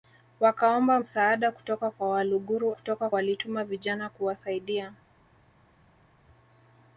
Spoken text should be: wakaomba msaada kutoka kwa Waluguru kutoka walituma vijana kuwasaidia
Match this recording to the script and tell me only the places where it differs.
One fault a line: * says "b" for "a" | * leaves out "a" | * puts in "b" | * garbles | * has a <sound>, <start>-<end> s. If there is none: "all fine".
all fine